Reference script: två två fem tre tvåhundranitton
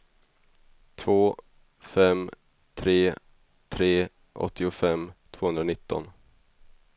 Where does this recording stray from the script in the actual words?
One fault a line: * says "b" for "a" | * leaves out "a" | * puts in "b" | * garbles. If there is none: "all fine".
* leaves out "två"
* puts in "tre åttiofem"